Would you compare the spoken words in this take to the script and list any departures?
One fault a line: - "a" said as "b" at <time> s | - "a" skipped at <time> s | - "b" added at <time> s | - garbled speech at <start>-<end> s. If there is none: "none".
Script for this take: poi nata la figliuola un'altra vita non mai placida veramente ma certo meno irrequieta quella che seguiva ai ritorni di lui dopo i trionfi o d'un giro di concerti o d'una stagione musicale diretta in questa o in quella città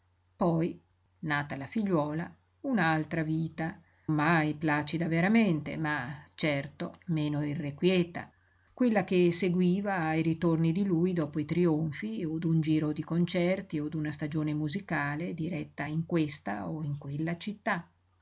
- "non" skipped at 3.8 s